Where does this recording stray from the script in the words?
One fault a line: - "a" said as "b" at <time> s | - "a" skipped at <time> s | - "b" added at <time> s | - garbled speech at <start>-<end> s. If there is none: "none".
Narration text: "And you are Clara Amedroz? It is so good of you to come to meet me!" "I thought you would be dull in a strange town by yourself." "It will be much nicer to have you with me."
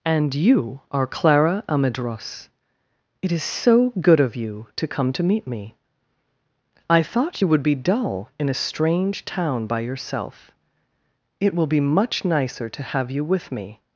none